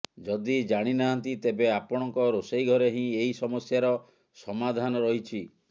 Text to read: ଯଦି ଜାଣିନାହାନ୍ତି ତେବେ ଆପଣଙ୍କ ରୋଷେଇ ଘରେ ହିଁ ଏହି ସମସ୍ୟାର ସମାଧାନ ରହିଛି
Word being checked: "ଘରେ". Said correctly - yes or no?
yes